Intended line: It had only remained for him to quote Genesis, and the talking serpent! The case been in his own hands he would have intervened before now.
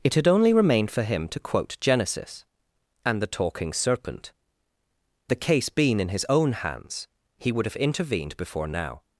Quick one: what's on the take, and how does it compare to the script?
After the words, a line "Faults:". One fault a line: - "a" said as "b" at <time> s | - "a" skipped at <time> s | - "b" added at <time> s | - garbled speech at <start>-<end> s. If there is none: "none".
It had only remained for him to quote Genesis, and the talking serpent! The case been in his own hands he would have intervened before now.
Faults:
none